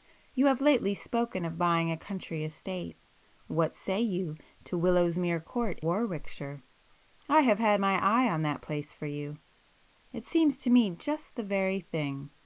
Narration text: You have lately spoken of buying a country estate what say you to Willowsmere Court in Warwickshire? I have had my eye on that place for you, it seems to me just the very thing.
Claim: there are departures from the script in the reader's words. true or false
true